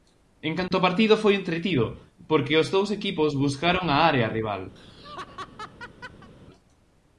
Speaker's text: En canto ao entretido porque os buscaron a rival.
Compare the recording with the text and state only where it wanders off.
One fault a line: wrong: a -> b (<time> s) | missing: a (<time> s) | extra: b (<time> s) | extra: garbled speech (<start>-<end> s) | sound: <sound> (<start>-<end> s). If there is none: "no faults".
sound: dropout (0.7-0.7 s)
extra: partido foi (0.9 s)
extra: dous equipos (2.8 s)
extra: área (4.1 s)
sound: laugh (4.8-6.3 s)